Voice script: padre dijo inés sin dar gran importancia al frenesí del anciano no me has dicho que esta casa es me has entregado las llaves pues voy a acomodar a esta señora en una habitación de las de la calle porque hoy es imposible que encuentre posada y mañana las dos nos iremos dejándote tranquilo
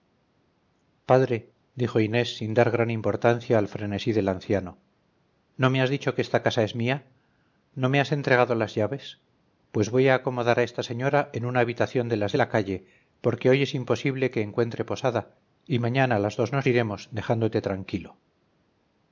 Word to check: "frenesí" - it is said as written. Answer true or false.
true